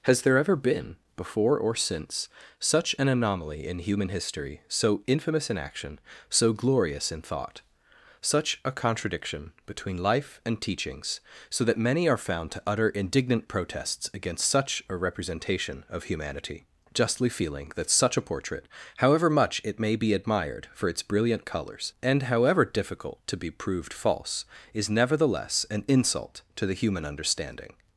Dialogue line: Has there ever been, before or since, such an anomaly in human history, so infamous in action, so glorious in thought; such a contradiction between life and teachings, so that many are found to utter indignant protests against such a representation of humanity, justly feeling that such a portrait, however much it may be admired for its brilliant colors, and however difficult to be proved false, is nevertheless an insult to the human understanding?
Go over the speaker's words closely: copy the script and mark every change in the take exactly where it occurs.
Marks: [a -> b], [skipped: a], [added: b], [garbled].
Has there ever been, before or since, such an anomaly in human history, so infamous in action, so glorious in thought; such a contradiction between life and teachings, so that many are found to utter indignant protests against such a representation of humanity, justly feeling that such a portrait, however much it may be admired for its brilliant colors, and however difficult to be proved false, is nevertheless an insult to the human understanding?